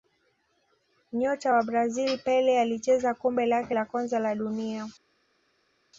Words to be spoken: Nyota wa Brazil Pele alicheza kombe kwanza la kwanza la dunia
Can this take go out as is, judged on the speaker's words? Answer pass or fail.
fail